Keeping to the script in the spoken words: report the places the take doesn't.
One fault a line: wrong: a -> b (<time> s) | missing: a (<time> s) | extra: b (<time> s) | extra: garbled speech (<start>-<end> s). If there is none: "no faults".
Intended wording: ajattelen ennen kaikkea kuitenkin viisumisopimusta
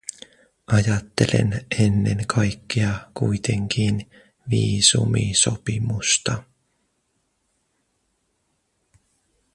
no faults